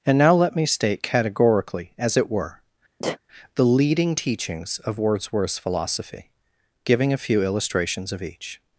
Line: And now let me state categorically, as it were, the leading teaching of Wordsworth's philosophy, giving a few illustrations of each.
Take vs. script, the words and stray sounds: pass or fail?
fail